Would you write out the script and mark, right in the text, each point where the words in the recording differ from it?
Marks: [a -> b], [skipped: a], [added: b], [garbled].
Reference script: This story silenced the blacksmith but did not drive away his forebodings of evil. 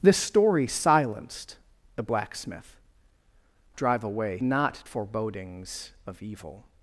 This story silenced the blacksmith [skipped: but did not] drive away [his -> not] forebodings of evil.